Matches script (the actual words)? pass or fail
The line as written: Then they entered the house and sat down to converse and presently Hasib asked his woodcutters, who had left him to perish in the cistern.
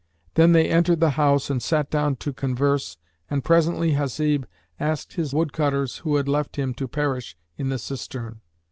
pass